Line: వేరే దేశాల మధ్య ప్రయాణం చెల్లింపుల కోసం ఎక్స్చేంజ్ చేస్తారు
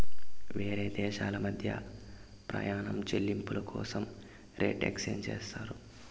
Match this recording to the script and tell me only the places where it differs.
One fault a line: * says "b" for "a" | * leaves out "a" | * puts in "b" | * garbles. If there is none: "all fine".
* puts in "రేట్"